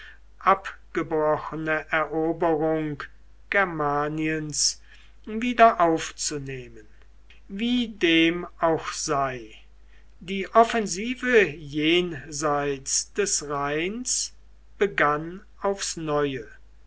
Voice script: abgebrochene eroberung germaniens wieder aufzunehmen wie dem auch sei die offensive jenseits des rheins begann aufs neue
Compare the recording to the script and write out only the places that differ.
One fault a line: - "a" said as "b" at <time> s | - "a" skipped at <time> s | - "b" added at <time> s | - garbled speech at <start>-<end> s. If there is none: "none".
none